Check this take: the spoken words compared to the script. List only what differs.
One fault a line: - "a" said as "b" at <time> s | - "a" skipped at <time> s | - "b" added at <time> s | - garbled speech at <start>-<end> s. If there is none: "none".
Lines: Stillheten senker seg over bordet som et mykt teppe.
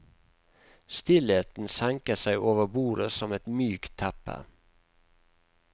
none